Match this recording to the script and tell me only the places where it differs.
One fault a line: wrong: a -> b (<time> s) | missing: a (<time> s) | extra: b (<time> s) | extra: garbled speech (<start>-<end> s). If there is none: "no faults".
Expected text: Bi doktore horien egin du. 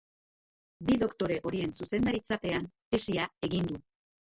extra: zuzendaritzapean tesia (1.8 s)